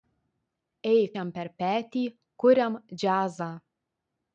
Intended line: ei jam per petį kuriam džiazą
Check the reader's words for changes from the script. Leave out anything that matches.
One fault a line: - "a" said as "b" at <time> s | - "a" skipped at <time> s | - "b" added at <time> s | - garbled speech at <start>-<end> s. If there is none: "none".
none